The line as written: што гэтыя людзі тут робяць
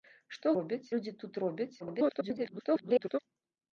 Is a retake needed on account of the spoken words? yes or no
yes